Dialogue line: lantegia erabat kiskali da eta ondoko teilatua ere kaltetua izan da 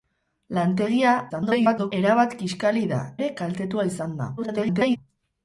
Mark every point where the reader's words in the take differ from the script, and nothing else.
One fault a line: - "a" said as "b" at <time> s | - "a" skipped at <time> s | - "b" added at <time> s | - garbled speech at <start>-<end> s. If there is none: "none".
- garbled speech at 1.3-1.9 s
- "eta ondoko teilatua" skipped at 3.0 s
- garbled speech at 4.4-5.0 s